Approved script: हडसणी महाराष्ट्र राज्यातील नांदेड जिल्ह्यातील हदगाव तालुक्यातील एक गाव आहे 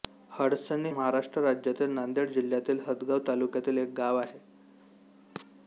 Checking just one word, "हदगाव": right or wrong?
right